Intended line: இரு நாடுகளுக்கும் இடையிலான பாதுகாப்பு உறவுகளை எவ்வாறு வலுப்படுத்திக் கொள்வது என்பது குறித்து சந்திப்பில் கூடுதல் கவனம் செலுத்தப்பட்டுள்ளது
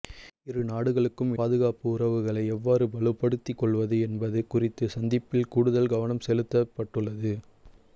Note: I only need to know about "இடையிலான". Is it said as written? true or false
false